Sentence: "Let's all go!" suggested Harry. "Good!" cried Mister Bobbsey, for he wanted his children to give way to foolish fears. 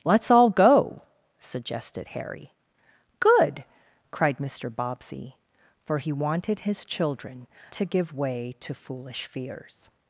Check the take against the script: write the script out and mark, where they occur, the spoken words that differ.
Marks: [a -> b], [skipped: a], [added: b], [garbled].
"Let's all go!" suggested Harry. "Good!" cried Mister Bobbsey, for he wanted his children to give way to foolish fears.